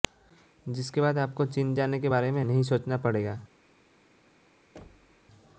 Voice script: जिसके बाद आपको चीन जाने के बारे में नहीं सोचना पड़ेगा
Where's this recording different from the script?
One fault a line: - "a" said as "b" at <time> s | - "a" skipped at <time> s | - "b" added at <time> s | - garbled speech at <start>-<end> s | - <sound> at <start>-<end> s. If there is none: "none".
- thud at 4.8-5.3 s